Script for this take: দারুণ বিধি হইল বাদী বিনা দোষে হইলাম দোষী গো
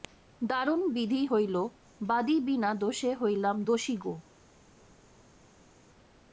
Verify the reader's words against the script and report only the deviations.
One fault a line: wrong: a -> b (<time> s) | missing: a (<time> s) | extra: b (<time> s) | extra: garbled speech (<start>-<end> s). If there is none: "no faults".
no faults